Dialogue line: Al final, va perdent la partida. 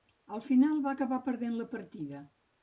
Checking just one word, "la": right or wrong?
right